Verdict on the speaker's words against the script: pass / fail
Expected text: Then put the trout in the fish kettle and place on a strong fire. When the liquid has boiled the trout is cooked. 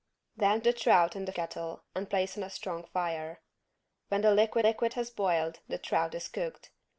fail